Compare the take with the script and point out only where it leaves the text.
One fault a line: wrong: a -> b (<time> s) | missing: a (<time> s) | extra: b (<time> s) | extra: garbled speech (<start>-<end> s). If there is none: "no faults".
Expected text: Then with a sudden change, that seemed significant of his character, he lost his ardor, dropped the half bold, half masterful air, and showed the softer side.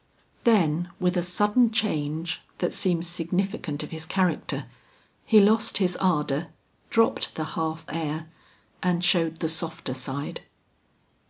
missing: bold half masterful (7.8 s)